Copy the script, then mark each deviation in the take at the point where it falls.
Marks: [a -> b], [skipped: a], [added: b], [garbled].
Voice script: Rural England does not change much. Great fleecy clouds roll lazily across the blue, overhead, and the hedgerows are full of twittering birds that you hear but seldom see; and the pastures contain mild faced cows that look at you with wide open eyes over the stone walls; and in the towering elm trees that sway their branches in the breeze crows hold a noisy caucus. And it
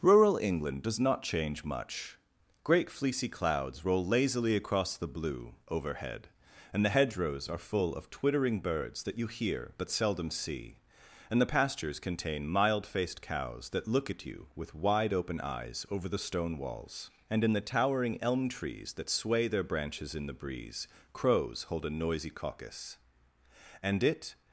Rural England does not change much. Great fleecy clouds roll lazily across the blue, overhead, and the hedgerows are full of twittering birds that you hear but seldom see; and the pastures contain mild faced cows that look at you with wide open eyes over the stone walls; and in the towering elm trees that sway their branches in the breeze crows hold a noisy caucus. And it